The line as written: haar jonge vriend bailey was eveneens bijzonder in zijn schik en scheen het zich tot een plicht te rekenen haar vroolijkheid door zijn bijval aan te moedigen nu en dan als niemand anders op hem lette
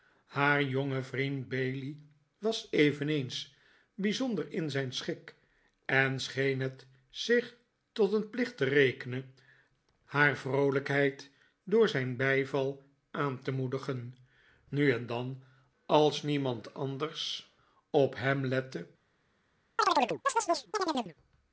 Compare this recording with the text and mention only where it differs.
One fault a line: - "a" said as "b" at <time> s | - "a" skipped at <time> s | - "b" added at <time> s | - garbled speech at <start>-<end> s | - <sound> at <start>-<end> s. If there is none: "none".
- chirp at 19.8-21.1 s